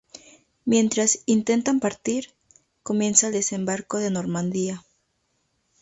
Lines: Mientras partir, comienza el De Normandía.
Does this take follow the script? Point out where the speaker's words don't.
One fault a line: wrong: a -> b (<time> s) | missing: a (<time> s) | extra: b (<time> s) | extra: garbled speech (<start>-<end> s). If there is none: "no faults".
extra: intentan (1.3 s)
extra: Desembarco (3.3 s)